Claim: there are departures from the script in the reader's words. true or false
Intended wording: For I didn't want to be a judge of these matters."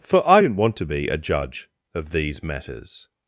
false